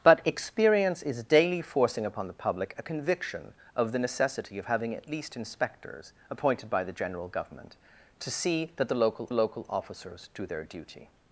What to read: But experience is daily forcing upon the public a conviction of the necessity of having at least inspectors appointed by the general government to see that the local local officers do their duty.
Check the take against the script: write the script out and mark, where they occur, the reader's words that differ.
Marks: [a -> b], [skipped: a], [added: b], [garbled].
But experience is daily forcing upon the public a conviction of the necessity of having at least inspectors appointed by the general government to see that the local local officers do their duty.